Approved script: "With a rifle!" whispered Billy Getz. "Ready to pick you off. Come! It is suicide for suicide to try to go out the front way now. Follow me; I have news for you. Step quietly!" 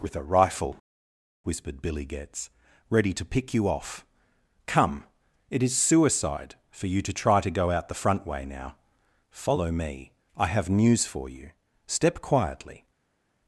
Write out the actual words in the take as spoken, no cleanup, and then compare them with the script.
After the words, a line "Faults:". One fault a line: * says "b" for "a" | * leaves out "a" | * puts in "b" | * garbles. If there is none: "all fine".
"With a rifle!" whispered Billy Getz. "Ready to pick you off. Come! It is suicide for you to try to go out the front way now. Follow me; I have news for you. Step quietly!"
Faults:
* says "you" for "suicide"